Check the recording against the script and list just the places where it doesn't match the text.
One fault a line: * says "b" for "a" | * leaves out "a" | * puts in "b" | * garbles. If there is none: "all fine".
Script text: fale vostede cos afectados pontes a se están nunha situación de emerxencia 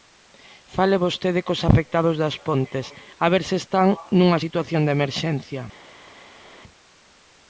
* puts in "das"
* puts in "ver"